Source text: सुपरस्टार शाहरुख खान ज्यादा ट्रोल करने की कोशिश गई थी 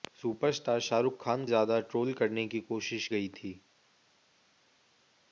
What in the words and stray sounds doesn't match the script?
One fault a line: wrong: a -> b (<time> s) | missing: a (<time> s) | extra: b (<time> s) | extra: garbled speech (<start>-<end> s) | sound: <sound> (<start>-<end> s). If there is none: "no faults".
no faults